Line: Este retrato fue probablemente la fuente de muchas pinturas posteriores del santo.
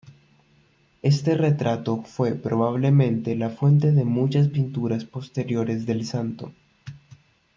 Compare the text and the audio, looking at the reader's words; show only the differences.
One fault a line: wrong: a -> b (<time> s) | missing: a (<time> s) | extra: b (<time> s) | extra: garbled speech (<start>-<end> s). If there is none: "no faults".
no faults